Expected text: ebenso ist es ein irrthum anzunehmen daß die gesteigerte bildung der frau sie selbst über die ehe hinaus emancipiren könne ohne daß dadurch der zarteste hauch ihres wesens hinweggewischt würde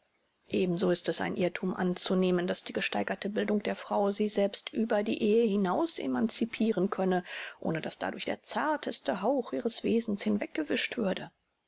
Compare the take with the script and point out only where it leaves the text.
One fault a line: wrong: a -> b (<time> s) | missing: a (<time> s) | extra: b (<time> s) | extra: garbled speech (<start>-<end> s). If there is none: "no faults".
no faults